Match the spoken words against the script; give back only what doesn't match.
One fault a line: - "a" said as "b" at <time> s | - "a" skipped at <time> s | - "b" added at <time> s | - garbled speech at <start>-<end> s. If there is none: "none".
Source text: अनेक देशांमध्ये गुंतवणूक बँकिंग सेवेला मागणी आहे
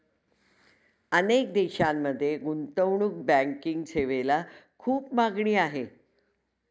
- "खूप" added at 4.8 s